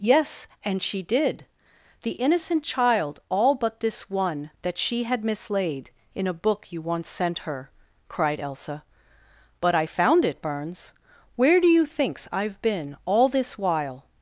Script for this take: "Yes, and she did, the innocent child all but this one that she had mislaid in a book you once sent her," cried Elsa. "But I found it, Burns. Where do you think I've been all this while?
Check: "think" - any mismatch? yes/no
yes